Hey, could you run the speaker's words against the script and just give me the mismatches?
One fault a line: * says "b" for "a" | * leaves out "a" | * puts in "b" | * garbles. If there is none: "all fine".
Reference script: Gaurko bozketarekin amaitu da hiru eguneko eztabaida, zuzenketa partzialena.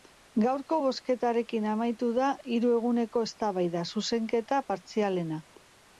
all fine